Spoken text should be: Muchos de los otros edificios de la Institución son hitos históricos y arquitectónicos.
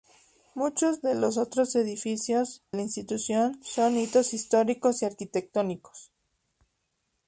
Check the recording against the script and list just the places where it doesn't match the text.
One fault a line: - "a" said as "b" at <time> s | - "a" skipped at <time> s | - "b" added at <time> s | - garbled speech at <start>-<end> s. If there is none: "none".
- "de" skipped at 2.6 s